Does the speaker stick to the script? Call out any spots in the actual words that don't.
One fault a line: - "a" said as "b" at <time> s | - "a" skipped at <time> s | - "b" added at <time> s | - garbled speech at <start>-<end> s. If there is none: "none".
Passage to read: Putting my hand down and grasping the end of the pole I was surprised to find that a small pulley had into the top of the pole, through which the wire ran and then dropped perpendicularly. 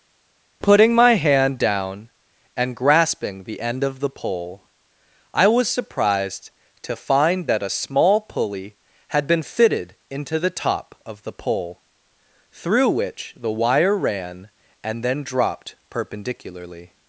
- "been fitted" added at 9.3 s